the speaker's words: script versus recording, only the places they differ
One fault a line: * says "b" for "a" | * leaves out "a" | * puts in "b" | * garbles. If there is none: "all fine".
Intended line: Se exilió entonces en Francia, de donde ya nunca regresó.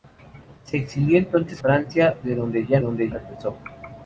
* leaves out "en"
* says "donde" for "nunca"